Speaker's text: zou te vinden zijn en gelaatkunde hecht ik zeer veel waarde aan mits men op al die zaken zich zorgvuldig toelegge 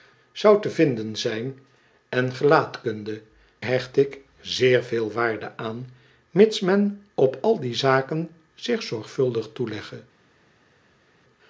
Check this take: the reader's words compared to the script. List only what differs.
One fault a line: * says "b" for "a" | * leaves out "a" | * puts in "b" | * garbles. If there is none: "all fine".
all fine